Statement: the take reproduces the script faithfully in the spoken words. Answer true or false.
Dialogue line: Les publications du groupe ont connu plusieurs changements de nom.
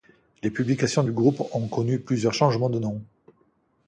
true